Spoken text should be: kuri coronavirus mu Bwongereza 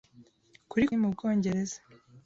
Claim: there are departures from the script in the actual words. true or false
true